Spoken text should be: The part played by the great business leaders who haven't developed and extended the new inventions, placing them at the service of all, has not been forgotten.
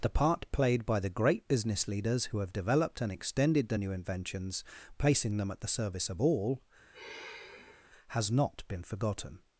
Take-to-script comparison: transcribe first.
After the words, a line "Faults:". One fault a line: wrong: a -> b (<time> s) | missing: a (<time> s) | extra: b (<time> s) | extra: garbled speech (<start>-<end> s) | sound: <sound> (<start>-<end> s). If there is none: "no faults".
The part played by the great business leaders who have developed and extended the new inventions, placing them at the service of all, has not been forgotten.
Faults:
wrong: haven't -> have (2.4 s)
sound: sigh (6.9-7.9 s)